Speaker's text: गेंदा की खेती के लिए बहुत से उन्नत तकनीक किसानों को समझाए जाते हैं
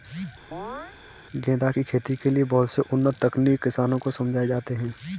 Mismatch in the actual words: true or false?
false